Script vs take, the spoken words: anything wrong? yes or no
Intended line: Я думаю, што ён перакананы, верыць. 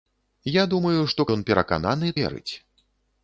no